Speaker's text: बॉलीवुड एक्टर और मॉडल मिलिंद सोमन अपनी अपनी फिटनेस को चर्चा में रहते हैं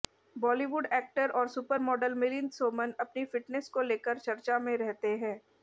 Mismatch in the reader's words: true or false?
true